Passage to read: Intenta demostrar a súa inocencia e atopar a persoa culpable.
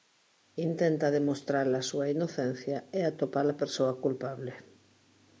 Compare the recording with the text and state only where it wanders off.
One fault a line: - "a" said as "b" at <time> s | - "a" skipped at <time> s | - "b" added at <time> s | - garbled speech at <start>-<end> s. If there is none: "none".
none